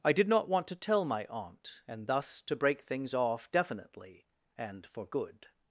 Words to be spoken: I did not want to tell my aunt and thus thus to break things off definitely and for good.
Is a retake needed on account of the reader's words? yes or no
yes